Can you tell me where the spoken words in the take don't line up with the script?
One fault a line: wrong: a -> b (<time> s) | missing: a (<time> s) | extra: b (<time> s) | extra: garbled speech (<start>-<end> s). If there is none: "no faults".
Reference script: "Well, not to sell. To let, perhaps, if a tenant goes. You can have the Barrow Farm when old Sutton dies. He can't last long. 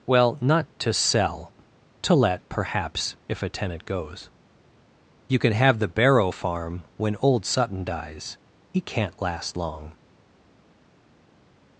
no faults